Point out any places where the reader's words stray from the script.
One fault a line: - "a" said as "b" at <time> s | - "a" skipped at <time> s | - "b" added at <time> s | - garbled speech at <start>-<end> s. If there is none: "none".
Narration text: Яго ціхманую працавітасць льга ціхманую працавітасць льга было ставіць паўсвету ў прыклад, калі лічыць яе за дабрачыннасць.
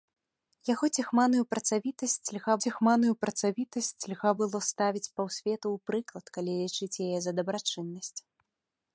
none